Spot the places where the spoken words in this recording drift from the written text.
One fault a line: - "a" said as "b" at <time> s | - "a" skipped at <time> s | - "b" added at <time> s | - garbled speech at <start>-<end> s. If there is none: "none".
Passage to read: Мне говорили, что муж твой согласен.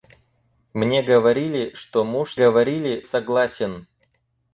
- "твой" said as "говорили" at 2.3 s